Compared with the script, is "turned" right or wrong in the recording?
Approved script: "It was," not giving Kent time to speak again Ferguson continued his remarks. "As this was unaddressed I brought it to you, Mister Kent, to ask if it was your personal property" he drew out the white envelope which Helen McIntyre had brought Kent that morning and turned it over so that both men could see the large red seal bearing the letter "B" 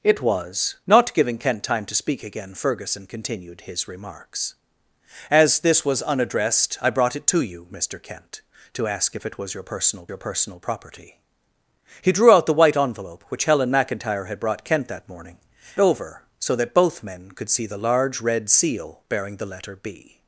wrong